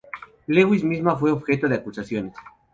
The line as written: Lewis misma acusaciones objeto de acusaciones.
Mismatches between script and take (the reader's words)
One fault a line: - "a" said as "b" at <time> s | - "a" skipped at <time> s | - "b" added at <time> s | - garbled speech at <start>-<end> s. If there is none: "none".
- "acusaciones" said as "fue" at 1.1 s